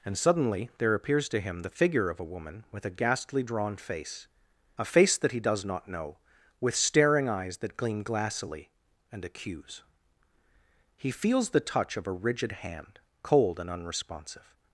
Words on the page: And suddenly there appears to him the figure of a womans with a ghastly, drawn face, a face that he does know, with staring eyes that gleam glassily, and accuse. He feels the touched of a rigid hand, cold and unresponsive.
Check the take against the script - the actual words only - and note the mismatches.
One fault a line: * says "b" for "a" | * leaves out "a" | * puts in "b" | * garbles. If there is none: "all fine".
* says "woman" for "womans"
* puts in "not"
* says "touch" for "touched"